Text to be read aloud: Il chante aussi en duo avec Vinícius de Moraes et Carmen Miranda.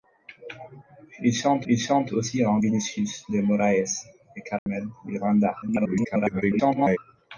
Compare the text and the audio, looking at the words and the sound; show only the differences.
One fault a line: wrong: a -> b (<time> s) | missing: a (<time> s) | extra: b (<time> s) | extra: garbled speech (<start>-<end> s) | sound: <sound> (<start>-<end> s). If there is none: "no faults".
extra: il chante (1.7 s)
missing: duo avec (2.6 s)
sound: dropout (4.6-4.7 s)
extra: garbled speech (5.6-7.0 s)